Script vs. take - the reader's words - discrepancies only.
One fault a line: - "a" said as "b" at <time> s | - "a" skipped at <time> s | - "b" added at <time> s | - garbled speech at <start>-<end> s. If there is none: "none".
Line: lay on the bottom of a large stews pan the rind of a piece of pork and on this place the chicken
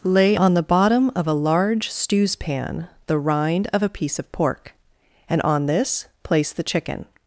none